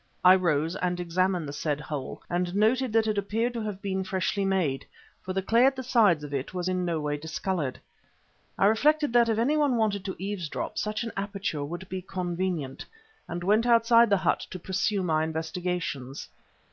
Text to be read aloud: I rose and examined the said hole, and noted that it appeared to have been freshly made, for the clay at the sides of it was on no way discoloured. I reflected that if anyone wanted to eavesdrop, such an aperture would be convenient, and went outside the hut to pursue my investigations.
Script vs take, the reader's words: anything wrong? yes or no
yes